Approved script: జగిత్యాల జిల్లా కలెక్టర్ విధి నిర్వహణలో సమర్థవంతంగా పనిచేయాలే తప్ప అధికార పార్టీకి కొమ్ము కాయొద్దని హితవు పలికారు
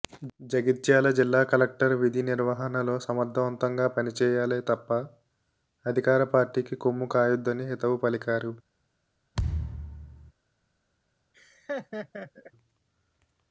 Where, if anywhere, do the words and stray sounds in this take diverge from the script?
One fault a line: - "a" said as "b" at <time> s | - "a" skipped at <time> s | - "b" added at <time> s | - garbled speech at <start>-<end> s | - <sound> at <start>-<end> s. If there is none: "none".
- thud at 9.3-10.3 s
- laugh at 11.3-12.5 s